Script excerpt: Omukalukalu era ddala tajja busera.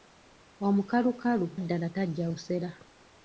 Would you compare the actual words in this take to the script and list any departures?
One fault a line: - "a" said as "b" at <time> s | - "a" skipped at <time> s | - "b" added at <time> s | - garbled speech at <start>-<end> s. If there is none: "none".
- "era" skipped at 1.5 s